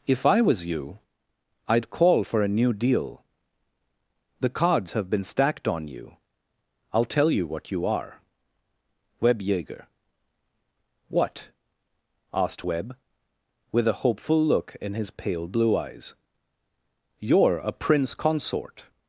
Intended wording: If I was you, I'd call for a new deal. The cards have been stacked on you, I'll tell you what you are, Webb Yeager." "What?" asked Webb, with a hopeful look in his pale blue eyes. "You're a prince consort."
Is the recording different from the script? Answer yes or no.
no